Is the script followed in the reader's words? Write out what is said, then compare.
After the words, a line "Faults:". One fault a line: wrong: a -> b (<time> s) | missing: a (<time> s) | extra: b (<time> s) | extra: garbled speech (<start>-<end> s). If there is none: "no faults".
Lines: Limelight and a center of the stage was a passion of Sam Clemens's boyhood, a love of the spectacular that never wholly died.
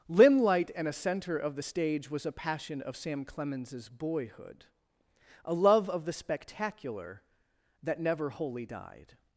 Limelight and a center of the stage was a passion of Sam Clemens's boyhood, a love of the spectacular that never wholly died.
Faults:
no faults